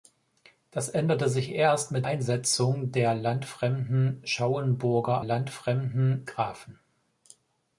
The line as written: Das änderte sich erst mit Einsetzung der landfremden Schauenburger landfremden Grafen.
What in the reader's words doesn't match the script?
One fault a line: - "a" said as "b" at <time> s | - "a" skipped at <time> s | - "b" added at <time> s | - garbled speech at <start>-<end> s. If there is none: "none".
none